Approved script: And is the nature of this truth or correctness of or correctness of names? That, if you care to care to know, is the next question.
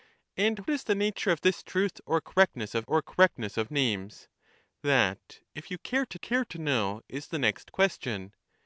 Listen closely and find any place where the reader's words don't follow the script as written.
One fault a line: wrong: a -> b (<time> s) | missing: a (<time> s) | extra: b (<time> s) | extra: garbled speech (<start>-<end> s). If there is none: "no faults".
no faults